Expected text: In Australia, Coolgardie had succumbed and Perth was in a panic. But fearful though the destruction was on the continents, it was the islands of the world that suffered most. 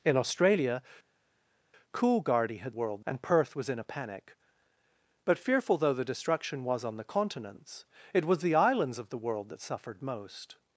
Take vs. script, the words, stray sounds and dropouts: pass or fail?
fail